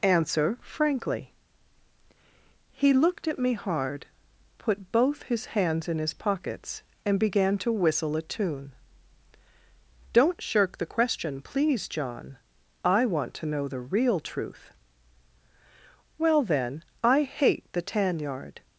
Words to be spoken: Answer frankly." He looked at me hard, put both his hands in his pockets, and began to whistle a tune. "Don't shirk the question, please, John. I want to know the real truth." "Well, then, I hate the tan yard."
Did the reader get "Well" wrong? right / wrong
right